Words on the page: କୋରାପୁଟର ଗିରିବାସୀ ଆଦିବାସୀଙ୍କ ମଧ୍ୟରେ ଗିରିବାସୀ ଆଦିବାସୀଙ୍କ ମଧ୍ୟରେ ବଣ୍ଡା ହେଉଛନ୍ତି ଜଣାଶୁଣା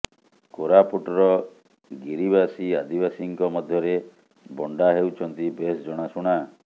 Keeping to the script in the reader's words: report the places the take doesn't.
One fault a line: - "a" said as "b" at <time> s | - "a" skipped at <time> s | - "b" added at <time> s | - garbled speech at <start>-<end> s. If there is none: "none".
- "ଗିରିବାସୀ ଆଦିବାସୀଙ୍କ ମଧ୍ୟରେ" skipped at 4.0 s
- "ବେଶ୍" added at 5.6 s